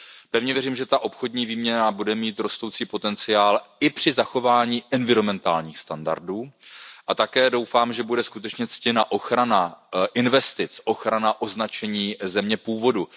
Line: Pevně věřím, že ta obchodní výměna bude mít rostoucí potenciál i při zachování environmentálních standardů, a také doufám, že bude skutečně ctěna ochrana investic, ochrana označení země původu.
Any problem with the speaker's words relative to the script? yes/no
no